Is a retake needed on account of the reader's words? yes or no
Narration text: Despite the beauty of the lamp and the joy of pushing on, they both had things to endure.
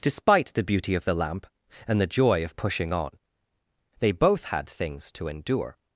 no